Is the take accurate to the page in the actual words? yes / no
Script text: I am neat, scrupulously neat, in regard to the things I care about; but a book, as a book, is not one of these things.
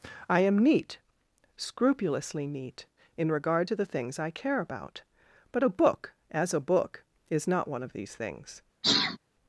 yes